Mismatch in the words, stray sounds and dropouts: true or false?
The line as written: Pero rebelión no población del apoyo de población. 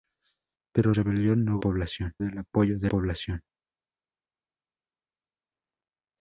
false